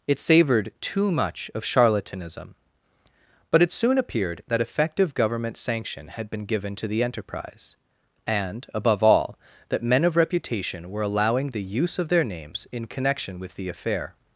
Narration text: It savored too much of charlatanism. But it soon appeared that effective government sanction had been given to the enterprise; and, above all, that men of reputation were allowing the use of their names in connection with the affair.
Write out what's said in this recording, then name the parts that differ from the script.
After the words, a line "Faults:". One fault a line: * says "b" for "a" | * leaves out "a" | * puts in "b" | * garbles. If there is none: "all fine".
It savored too much of charlatanism. But it soon appeared that effective government sanction had been given to the enterprise; and, above all, that men of reputation were allowing the use of their names in connection with the affair.
Faults:
all fine